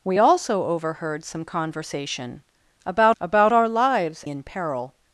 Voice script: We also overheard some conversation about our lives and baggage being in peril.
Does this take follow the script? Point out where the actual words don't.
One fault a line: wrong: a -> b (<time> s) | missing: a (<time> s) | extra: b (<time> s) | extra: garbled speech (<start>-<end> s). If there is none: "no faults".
extra: about (3.2 s)
missing: and baggage being (4.3 s)